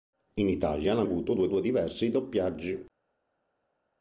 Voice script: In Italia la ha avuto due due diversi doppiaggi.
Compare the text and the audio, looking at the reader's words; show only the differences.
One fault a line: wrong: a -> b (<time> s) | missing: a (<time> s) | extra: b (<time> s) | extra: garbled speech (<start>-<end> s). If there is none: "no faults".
no faults